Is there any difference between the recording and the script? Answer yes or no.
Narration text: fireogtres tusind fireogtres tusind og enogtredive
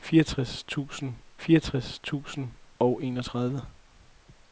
no